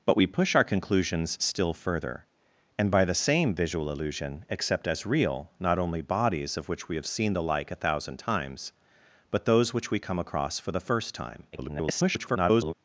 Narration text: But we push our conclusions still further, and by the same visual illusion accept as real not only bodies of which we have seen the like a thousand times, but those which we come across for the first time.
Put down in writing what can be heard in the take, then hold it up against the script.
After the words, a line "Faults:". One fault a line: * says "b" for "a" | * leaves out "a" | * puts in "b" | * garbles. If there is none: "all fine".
But we push our conclusions still further, and by the same visual illusion accept as real not only bodies of which we have seen the like a thousand times, but those which we come across for the first time. [garbled]
Faults:
* garbles